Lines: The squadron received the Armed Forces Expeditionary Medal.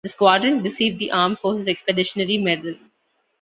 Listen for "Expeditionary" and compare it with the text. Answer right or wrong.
right